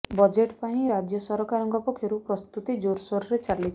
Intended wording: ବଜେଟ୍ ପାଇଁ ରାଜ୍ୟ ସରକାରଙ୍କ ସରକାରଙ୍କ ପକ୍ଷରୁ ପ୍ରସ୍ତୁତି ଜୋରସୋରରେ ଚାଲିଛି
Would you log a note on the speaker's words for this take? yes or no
yes